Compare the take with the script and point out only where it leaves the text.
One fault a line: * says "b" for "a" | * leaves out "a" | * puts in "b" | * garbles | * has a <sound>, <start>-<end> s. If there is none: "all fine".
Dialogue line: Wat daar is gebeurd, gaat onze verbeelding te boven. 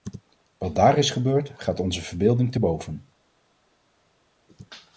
all fine